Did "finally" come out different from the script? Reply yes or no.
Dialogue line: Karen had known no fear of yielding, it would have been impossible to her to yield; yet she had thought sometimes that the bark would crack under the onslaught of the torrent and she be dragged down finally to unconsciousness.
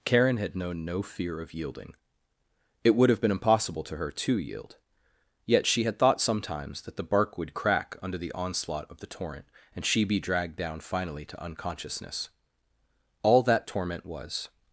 no